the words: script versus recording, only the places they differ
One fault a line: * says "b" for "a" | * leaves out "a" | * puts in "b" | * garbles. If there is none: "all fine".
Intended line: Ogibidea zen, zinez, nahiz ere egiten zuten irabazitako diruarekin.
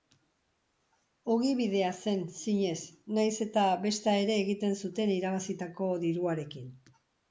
* puts in "eta besta"